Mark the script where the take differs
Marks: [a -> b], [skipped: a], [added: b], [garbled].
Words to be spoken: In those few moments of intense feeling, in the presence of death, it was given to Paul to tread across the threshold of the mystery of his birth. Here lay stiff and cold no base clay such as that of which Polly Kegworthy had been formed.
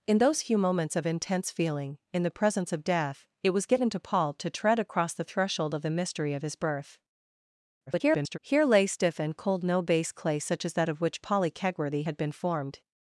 In those few moments of intense feeling, in the presence of death, it was given to Paul to tread across the threshold of the mystery of his birth. [garbled] Here lay stiff and cold no base clay such as that of which Polly Kegworthy had been formed.